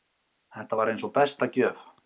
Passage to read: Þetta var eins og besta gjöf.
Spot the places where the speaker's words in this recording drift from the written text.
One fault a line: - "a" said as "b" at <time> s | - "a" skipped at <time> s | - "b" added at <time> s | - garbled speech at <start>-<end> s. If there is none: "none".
none